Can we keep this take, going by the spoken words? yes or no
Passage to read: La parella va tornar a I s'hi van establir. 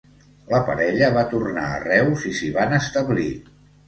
no